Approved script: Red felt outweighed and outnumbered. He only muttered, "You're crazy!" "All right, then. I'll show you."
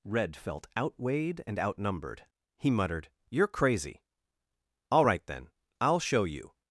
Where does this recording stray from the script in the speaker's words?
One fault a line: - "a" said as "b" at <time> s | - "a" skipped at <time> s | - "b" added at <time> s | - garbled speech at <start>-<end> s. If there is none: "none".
- "only" skipped at 2.7 s